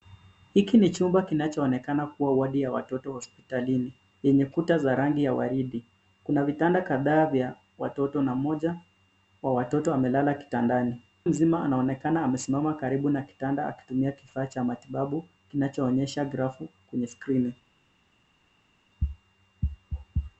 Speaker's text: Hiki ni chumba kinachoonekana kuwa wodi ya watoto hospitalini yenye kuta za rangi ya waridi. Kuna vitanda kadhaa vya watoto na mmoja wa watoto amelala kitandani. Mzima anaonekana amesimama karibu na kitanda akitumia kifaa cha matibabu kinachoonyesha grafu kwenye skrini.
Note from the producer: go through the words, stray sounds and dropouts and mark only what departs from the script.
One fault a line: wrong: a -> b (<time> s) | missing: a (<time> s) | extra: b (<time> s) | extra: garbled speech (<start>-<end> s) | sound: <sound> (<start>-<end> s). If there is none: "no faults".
no faults